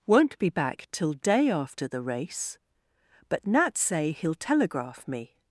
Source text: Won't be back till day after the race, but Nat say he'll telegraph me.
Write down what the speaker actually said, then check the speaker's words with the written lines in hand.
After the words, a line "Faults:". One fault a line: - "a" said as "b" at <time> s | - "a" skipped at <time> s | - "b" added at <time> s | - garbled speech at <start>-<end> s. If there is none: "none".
Won't be back till day after the race, but Nat say he'll telegraph me.
Faults:
none